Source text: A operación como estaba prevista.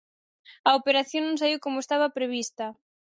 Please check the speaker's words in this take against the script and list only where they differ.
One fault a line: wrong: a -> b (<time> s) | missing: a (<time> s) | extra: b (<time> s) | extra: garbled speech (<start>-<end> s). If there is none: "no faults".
extra: non saíu (1.2 s)